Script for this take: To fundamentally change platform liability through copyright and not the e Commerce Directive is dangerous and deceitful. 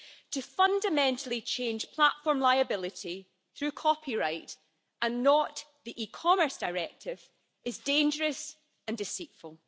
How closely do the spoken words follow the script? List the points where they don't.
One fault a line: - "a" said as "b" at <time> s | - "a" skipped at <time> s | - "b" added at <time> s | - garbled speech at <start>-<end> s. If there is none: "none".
none